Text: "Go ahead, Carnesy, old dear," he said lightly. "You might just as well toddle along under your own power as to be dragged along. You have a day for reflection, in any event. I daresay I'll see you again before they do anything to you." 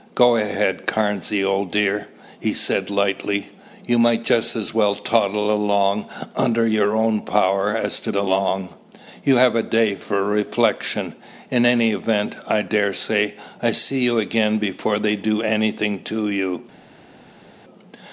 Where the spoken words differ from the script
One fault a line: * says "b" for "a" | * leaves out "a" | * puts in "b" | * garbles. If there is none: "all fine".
* leaves out "be dragged"